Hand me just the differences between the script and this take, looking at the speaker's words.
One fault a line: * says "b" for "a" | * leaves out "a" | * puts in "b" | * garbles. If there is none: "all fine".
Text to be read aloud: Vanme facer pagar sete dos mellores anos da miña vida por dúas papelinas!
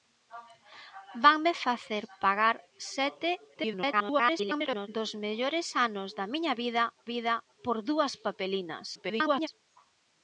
* garbles
* puts in "vida"
* garbles